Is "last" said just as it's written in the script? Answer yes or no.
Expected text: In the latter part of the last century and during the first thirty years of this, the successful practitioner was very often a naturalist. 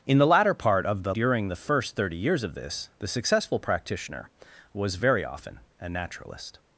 no